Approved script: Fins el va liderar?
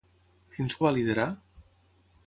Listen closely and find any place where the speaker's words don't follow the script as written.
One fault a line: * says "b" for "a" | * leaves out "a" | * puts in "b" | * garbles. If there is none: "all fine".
all fine